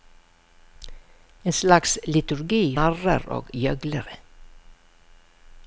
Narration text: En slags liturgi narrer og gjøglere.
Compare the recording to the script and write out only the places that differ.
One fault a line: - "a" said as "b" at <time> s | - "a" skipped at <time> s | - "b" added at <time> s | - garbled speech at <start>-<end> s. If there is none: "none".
none